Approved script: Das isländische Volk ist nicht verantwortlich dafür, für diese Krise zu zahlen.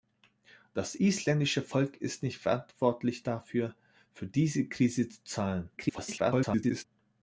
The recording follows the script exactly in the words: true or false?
false